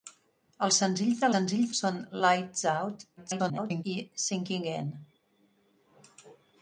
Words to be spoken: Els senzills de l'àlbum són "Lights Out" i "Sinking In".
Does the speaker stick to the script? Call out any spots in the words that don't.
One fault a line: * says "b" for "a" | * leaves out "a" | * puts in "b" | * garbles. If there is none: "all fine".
* says "senzills" for "l'àlbum"
* garbles